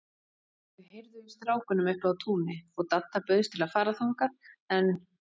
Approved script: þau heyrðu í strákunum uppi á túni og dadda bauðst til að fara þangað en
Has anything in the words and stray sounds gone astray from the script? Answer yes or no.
no